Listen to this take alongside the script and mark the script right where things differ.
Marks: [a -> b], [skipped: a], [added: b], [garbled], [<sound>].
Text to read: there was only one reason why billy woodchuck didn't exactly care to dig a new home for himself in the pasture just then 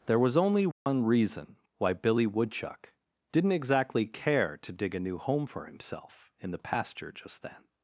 there was only one [dropout] reason why billy woodchuck didn't exactly care to dig a new home for himself in the pasture just then